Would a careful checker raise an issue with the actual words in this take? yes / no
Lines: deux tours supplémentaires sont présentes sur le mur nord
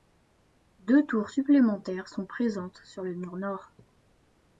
no